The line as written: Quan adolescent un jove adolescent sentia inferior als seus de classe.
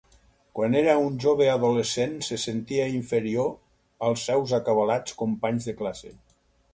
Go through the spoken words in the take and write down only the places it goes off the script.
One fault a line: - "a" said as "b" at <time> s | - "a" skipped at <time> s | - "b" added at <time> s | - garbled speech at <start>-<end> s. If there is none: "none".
- "adolescent" said as "era" at 0.8 s
- "se" added at 2.3 s
- "acabalats companys" added at 4.6 s